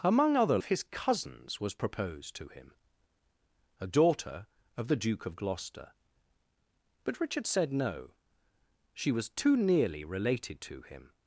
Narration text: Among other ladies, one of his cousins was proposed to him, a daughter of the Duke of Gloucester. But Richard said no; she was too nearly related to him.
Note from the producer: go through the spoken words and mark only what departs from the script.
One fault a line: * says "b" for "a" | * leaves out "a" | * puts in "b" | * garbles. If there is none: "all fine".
* leaves out "ladies one"